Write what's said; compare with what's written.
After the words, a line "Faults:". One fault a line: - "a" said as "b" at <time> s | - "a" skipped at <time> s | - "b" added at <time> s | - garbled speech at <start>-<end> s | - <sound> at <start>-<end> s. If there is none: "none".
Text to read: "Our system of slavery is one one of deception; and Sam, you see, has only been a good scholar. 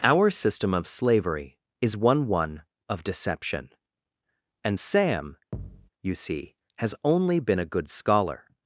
"Our system of slavery is one one of deception; and Sam, you see, has only been a good scholar.
Faults:
- thud at 5.5-5.9 s